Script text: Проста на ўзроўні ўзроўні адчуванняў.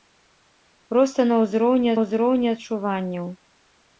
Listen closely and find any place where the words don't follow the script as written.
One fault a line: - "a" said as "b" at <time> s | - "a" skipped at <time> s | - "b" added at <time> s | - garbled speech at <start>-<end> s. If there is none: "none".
none